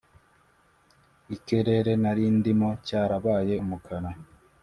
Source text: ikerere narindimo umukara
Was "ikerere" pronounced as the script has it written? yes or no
yes